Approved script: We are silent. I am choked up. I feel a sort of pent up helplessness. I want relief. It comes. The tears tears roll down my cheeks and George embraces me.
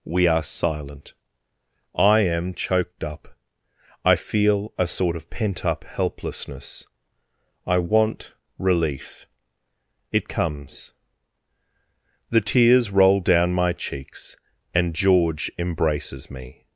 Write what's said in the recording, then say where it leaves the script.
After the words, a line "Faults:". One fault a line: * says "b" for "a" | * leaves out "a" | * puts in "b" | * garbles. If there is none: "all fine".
We are silent. I am choked up. I feel a sort of pent up helplessness. I want relief. It comes. The tears roll down my cheeks and George embraces me.
Faults:
* leaves out "tears"